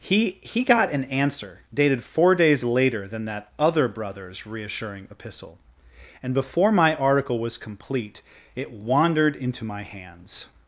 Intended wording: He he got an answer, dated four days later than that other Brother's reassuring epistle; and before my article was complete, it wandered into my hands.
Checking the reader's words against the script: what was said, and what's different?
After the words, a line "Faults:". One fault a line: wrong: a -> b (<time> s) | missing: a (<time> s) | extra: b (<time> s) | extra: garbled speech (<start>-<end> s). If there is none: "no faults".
He he got an answer, dated four days later than that other Brother's reassuring epistle; and before my article was complete, it wandered into my hands.
Faults:
no faults